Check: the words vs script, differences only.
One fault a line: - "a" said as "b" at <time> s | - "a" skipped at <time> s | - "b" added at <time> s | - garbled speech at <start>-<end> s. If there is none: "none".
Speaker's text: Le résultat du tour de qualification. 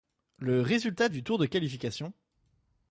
none